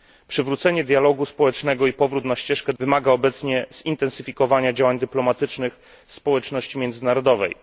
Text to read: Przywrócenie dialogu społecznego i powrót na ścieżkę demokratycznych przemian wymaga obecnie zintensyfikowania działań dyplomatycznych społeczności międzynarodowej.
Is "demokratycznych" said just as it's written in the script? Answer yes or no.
no